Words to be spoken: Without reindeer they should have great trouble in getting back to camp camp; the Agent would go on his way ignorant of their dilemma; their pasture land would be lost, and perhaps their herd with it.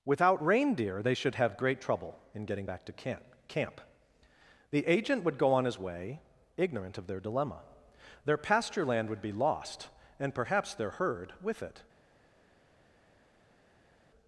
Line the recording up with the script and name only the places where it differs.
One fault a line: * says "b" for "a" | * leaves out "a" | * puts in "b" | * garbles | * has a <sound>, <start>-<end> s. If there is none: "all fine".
all fine